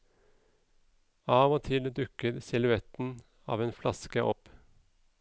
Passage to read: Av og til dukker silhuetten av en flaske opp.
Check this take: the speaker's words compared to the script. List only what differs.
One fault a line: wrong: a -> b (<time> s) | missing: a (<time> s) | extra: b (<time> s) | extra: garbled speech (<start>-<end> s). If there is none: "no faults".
no faults